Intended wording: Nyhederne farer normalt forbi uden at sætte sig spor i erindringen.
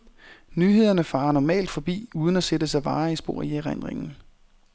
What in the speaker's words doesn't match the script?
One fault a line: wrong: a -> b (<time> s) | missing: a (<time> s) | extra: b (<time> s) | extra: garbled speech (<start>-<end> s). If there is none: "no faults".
extra: varige (2.8 s)